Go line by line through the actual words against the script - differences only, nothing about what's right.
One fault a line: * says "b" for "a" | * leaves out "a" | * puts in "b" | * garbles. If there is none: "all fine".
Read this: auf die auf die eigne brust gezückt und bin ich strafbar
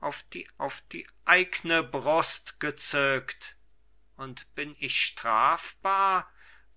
all fine